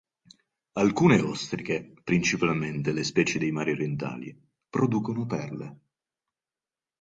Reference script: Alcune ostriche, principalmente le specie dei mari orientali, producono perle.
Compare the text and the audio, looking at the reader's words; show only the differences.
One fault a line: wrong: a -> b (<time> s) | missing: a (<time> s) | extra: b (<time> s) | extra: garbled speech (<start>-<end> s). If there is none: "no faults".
no faults